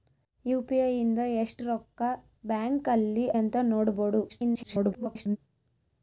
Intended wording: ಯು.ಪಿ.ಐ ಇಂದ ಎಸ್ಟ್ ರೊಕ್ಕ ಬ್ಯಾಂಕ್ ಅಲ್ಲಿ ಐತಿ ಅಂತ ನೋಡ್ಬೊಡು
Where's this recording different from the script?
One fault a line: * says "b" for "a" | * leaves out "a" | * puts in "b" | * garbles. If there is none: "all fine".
* leaves out "ಐತಿ"
* garbles